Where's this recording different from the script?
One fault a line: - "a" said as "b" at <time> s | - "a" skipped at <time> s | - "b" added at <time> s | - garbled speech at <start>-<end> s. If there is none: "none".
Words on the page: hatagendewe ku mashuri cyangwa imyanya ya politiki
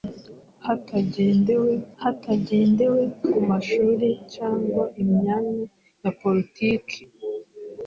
- "hatagendewe" added at 2.0 s